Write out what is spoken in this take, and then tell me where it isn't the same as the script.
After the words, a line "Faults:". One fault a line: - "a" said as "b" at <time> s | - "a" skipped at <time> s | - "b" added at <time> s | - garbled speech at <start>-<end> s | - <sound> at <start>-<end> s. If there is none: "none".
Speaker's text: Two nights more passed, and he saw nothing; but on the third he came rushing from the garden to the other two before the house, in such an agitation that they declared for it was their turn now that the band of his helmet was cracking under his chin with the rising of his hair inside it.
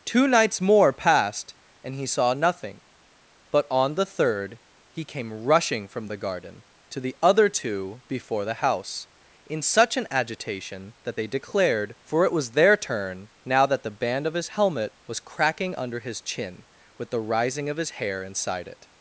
Two nights more passed, and he saw nothing; but on the third he came rushing from the garden to the other two before the house, in such an agitation that they declared for it was their turn now that the band of his helmet was cracking under his chin with the rising of his hair inside it.
Faults:
none